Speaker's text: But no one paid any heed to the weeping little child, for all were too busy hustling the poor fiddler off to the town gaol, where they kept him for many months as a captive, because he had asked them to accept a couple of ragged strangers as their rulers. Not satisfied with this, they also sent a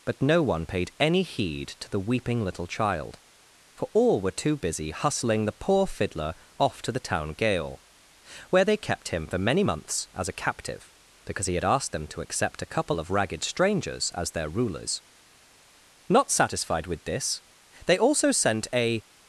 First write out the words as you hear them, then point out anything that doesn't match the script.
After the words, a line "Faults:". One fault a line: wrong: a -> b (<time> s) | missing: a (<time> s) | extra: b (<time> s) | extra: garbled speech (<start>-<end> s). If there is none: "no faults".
But no one paid any heed to the weeping little child, for all were too busy hustling the poor fiddler off to the town gaol, where they kept him for many months as a captive, because he had asked them to accept a couple of ragged strangers as their rulers. Not satisfied with this, they also sent a
Faults:
no faults